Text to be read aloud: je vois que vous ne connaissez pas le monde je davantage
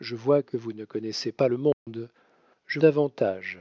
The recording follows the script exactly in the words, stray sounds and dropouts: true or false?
false